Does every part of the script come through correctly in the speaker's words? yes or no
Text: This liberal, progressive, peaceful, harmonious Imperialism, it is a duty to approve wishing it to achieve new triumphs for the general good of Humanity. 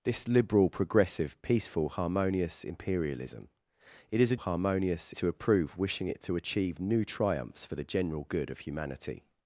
no